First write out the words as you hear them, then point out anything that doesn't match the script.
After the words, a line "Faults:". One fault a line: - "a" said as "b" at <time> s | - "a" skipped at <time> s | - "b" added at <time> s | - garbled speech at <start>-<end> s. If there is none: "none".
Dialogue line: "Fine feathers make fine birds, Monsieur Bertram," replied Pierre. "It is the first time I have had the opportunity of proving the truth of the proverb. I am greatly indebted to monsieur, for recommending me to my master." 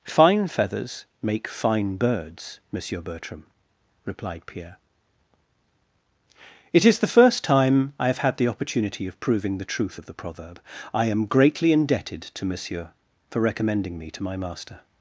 "Fine feathers make fine birds, Monsieur Bertram," replied Pierre. "It is the first time I have had the opportunity of proving the truth of the proverb. I am greatly indebted to monsieur, for recommending me to my master."
Faults:
none